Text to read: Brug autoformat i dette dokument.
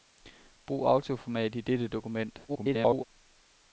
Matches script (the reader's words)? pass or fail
fail